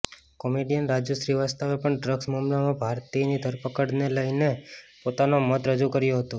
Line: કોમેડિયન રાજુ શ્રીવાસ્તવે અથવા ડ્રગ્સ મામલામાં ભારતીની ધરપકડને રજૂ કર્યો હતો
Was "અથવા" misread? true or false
true